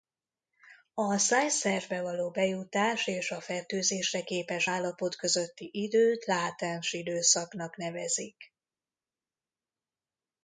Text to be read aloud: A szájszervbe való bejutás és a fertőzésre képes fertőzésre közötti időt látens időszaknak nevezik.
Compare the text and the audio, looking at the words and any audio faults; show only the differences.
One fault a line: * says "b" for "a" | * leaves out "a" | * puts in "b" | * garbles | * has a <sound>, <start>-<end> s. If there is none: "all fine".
* says "állapot" for "fertőzésre"